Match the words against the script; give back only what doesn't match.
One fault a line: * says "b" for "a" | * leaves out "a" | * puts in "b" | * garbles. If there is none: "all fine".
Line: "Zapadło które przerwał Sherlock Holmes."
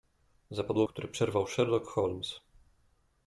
all fine